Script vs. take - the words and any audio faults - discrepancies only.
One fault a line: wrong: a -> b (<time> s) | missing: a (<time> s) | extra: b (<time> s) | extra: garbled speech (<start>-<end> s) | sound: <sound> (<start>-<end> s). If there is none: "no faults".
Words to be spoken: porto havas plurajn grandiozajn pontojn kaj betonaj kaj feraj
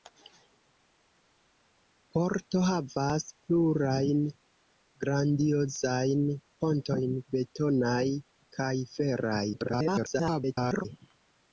missing: kaj (7.2 s)
extra: garbled speech (9.5-10.8 s)